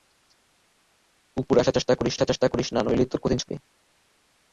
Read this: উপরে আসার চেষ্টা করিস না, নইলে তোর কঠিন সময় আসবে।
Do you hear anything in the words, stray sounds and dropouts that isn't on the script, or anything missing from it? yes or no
yes